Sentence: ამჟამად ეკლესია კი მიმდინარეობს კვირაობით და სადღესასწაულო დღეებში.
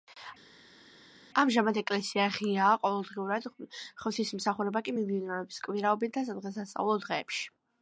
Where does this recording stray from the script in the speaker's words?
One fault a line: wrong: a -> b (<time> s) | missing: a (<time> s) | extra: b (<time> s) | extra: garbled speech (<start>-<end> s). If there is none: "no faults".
extra: ღიაა ყოველდღიურად ღვთისმსახურება (2.4 s)